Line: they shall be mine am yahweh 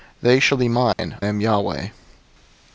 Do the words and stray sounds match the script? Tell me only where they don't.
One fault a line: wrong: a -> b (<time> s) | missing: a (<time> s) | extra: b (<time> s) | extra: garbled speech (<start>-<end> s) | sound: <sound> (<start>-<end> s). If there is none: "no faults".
sound: dropout (0.9-1.0 s)